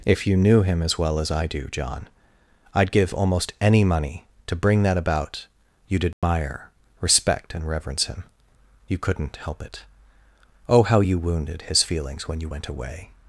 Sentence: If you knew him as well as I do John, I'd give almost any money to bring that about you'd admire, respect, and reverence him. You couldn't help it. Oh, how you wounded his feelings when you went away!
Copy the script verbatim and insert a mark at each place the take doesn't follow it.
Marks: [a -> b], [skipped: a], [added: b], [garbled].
If you knew him as well as I do John, I'd give almost any money to bring that about you'd admire, respect, and reverence him. You couldn't help it. Oh, how you wounded his feelings when you went away!